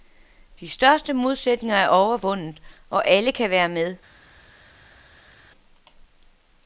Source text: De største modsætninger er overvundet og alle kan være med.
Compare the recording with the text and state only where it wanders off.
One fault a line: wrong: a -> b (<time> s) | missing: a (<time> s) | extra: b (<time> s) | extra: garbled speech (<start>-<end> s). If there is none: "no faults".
no faults